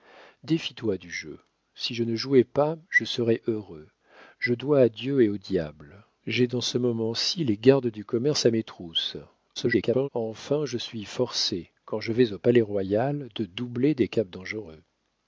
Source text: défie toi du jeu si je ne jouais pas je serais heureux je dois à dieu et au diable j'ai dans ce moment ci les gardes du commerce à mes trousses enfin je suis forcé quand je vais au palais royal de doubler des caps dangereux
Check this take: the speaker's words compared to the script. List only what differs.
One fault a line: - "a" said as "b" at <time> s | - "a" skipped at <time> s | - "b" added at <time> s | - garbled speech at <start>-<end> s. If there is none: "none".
- garbled speech at 9.6-10.1 s